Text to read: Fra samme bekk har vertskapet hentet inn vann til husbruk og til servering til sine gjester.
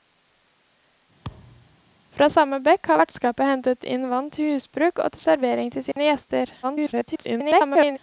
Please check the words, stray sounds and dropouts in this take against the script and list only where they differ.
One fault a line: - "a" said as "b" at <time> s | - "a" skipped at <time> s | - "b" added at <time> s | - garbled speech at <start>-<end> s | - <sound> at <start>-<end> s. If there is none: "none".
- thud at 1.2-1.8 s
- dropout at 5.9-6.0 s
- garbled speech at 6.6-8.0 s